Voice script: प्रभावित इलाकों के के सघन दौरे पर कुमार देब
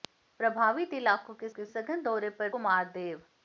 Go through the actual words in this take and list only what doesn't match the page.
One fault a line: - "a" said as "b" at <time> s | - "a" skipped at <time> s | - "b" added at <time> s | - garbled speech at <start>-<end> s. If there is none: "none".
none